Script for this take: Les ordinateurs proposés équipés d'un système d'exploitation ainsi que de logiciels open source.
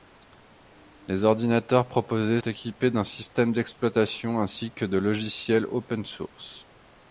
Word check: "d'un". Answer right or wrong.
right